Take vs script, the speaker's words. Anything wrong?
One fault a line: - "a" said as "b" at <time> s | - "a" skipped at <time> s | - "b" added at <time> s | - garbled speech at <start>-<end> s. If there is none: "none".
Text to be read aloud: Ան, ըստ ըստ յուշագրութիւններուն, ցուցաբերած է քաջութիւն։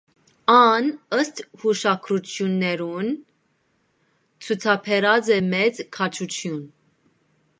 - "ըստ" skipped at 1.4 s
- "մեծ" added at 5.5 s